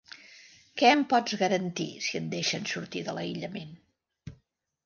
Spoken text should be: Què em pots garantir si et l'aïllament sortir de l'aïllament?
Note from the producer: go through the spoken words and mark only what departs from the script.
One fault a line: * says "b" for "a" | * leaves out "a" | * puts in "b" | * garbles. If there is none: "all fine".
* says "deixen" for "l'aïllament"